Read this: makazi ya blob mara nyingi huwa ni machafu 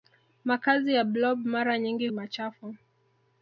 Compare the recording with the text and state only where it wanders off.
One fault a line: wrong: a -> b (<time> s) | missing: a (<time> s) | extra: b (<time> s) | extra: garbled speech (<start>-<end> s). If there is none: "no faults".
missing: huwa ni (2.1 s)